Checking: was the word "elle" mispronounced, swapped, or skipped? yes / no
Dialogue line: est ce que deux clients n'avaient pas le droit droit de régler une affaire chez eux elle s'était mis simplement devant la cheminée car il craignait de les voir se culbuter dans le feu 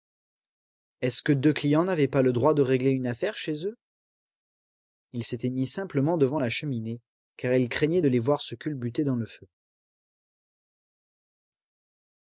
yes